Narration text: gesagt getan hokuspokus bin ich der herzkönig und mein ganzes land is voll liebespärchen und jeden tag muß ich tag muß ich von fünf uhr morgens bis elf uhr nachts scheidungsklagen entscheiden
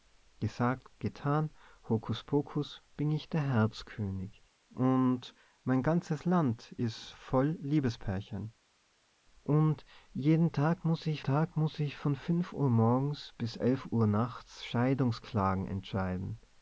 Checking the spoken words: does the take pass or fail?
pass